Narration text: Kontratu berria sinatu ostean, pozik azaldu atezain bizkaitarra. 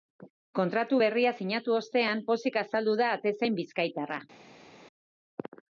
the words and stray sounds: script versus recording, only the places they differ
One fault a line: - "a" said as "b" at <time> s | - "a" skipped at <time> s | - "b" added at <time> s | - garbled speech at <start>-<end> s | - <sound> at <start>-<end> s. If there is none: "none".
- "da" added at 3.0 s